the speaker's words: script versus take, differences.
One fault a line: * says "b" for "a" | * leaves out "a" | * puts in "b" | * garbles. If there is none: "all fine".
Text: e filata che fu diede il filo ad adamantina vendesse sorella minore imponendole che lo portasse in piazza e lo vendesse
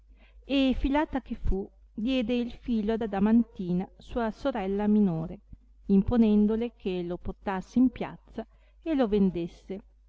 * says "sua" for "vendesse"